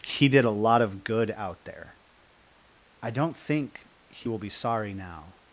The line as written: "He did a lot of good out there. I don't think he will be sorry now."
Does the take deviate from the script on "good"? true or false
false